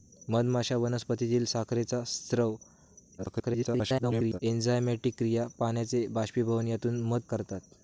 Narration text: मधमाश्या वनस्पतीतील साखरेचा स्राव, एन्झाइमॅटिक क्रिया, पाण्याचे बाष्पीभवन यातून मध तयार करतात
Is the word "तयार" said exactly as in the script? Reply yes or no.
no